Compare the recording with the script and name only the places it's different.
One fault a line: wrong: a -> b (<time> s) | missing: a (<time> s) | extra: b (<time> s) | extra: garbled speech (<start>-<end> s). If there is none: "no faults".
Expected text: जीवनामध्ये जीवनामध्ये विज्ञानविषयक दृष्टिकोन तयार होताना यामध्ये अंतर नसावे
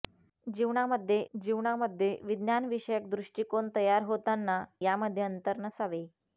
no faults